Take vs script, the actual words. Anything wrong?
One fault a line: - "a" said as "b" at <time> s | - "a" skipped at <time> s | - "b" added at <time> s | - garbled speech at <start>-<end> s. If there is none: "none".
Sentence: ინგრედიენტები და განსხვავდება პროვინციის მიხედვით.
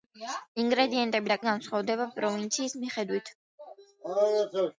none